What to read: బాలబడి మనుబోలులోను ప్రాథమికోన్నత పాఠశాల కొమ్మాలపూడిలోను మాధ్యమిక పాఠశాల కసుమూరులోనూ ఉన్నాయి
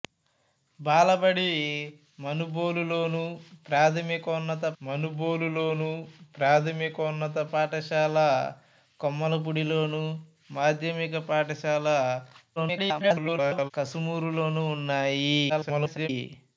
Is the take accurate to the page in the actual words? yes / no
no